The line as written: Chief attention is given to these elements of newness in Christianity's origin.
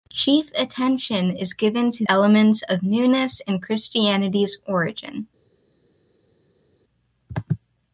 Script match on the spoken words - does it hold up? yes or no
no